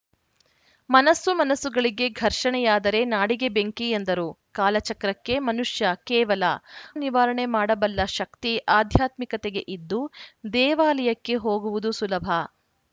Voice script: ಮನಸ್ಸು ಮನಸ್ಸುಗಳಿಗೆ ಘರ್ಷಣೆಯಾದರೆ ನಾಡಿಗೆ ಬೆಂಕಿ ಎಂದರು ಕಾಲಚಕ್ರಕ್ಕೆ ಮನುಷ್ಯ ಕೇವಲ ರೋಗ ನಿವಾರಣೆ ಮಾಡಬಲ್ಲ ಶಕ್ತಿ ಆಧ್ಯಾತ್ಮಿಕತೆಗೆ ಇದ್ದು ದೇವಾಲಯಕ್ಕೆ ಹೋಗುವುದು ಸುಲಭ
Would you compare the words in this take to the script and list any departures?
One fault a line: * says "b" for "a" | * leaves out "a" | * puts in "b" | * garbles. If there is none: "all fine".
* leaves out "ರೋಗ"